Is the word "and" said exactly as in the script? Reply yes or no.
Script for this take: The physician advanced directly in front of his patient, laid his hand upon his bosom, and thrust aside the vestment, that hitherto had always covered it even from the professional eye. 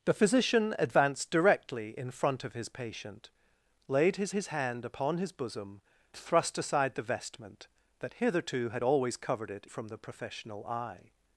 no